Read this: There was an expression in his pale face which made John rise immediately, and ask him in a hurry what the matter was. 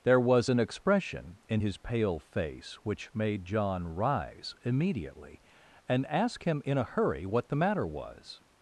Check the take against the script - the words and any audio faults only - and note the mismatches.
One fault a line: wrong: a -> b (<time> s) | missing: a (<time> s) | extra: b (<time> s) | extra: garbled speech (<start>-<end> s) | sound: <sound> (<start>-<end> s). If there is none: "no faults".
no faults